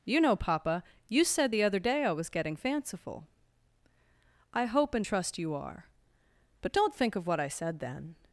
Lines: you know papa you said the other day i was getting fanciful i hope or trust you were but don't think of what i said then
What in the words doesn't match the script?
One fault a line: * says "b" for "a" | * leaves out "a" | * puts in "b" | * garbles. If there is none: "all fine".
* says "and" for "or"
* says "are" for "were"